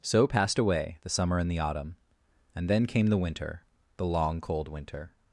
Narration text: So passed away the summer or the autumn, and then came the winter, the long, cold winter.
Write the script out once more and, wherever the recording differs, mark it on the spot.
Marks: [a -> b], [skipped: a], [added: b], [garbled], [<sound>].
So passed away the summer [or -> and] the autumn, and then came the winter, the long, cold winter.